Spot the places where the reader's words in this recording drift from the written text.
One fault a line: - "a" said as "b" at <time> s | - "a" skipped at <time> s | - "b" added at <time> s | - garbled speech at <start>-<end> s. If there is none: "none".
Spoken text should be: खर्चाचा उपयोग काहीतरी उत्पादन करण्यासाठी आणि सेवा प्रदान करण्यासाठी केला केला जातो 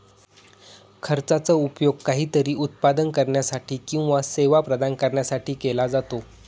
- "आणि" said as "किंवा" at 3.9 s
- "केला" skipped at 5.9 s